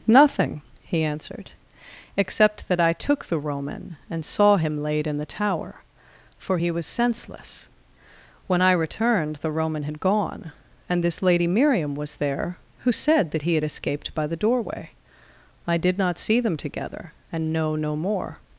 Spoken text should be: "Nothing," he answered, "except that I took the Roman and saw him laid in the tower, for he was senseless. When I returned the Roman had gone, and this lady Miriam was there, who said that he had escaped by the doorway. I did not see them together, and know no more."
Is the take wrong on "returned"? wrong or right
right